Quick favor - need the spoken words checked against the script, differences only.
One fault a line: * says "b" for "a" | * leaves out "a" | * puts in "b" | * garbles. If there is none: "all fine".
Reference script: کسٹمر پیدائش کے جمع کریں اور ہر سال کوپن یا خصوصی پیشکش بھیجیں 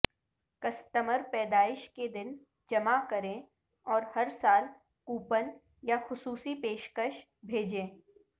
* puts in "دن"